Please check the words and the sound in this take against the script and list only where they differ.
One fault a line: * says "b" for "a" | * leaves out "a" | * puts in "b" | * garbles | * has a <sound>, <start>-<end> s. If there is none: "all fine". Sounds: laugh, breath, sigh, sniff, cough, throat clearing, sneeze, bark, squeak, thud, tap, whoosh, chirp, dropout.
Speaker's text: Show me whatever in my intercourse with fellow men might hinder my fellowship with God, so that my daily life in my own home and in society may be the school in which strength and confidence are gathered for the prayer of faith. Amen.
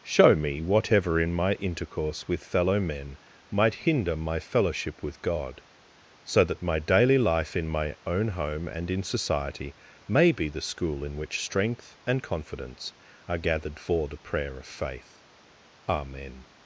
all fine